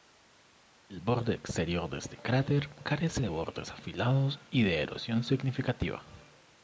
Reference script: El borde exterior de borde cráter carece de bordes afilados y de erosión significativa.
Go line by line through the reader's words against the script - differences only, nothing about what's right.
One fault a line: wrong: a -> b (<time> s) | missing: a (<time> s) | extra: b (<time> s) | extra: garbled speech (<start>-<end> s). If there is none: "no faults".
wrong: borde -> este (2.0 s)